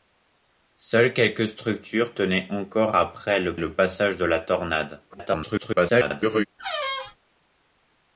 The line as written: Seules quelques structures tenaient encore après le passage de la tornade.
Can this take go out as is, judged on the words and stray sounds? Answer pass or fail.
fail